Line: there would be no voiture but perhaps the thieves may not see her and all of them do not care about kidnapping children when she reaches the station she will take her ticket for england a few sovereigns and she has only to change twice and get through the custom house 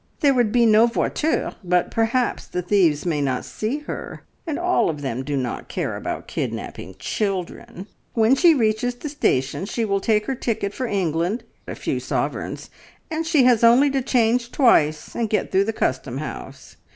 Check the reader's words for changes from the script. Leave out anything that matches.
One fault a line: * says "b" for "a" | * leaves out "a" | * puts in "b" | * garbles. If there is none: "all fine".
all fine